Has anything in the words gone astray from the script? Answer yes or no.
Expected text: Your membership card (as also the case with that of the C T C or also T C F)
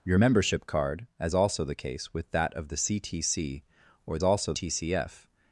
no